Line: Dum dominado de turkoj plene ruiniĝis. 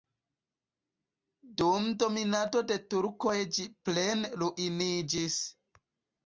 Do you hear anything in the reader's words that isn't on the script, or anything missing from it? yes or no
yes